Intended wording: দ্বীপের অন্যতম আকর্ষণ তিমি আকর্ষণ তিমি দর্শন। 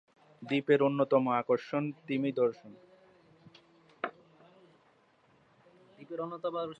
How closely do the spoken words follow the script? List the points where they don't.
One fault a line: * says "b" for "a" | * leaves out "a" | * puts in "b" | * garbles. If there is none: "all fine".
* leaves out "আকর্ষণ তিমি"